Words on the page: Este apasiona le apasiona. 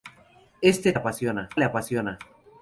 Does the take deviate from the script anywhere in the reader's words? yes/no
no